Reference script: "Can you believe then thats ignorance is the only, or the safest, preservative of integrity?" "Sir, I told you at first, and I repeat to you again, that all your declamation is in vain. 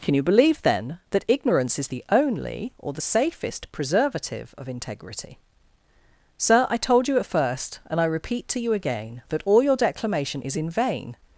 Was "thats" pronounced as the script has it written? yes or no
no